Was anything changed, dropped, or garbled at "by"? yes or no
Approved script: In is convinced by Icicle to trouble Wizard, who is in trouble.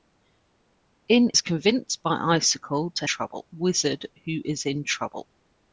no